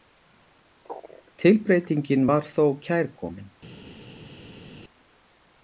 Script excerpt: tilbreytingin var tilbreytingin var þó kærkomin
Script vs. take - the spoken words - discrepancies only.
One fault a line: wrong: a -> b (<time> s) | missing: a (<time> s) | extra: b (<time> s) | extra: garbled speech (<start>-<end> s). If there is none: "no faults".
missing: tilbreytingin var (2.5 s)